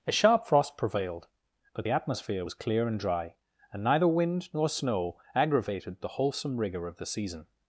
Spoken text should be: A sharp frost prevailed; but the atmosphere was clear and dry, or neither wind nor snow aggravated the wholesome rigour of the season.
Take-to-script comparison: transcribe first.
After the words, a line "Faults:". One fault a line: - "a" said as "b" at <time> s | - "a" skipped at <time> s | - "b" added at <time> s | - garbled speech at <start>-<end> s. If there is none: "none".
A sharp frost prevailed; but the atmosphere was clear and dry, and neither wind nor snow aggravated the wholesome rigour of the season.
Faults:
- "or" said as "and" at 3.7 s